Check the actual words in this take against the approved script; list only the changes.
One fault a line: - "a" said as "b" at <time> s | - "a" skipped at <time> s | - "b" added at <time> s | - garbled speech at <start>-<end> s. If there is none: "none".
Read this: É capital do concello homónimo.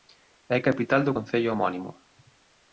none